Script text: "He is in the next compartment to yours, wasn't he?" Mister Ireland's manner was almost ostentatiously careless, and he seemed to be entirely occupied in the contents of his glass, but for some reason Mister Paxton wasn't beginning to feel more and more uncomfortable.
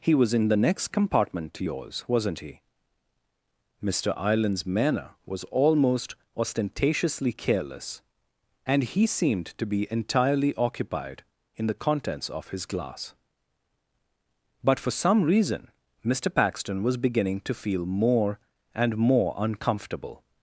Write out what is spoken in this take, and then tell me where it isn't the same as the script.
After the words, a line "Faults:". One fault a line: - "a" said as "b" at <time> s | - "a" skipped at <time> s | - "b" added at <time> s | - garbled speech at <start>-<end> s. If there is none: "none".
"He was in the next compartment to yours, wasn't he?" Mister Ireland's manner was almost ostentatiously careless, and he seemed to be entirely occupied in the contents of his glass, but for some reason Mister Paxton was beginning to feel more and more uncomfortable.
Faults:
- "is" said as "was" at 0.1 s
- "wasn't" said as "was" at 16.8 s